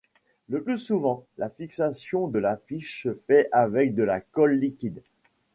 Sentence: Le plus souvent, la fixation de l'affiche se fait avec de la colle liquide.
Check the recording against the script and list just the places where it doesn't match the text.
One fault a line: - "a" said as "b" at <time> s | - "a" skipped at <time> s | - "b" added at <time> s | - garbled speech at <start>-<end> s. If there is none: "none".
none